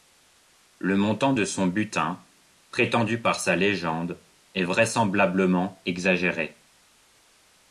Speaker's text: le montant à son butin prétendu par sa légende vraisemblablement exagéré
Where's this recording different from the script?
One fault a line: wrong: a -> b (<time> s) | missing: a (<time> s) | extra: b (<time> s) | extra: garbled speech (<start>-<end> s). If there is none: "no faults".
wrong: à -> de (1.3 s)
extra: est (4.5 s)